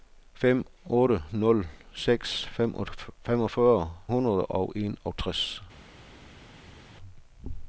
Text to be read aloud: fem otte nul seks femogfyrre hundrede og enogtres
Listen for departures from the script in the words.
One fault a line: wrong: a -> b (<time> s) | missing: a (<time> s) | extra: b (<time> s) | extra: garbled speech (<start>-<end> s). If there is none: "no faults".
no faults